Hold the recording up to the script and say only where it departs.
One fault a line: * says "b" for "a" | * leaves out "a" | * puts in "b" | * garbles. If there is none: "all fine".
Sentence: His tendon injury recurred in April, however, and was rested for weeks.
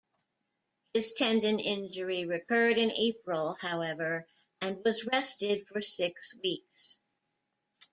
* puts in "six"